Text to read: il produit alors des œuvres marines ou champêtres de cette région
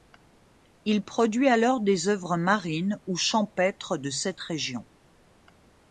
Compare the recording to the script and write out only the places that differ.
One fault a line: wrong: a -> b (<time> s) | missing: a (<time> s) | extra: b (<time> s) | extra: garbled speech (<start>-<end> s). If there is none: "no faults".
no faults